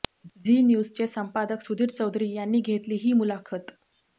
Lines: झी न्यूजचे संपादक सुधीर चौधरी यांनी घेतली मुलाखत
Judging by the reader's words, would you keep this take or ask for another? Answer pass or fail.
fail